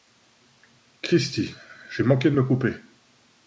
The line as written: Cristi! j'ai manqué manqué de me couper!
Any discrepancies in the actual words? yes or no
yes